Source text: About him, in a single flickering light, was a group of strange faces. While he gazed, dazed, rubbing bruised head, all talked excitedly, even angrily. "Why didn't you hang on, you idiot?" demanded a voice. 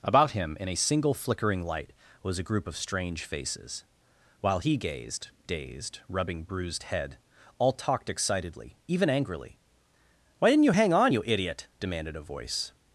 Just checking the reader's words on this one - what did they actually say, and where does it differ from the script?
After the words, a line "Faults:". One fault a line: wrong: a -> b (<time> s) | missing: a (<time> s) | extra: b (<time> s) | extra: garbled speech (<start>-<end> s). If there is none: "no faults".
About him, in a single flickering light, was a group of strange faces. While he gazed, dazed, rubbing bruised head, all talked excitedly, even angrily. "Why didn't you hang on, you idiot?" demanded a voice.
Faults:
no faults